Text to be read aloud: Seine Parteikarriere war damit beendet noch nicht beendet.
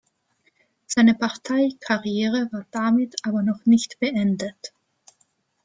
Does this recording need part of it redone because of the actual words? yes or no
yes